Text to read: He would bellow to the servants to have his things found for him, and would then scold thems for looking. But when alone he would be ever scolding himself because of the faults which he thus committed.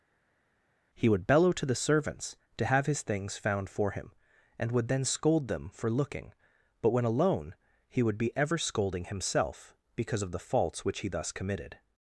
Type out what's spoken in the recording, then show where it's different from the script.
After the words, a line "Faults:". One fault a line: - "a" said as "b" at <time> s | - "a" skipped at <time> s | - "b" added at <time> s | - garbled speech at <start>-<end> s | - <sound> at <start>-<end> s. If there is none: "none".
He would bellow to the servants to have his things found for him, and would then scold them for looking. But when alone he would be ever scolding himself because of the faults which he thus committed.
Faults:
- "thems" said as "them" at 5.5 s